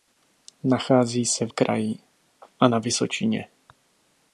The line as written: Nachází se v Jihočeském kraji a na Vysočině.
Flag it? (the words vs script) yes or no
yes